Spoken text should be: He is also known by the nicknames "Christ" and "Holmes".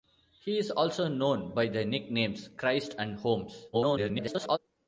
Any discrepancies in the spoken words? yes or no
yes